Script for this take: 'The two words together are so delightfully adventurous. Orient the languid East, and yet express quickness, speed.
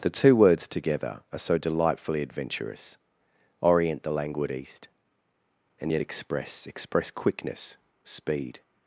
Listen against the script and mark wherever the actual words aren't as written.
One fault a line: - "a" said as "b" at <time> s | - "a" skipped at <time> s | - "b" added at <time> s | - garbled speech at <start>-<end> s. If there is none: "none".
- "express" added at 6.7 s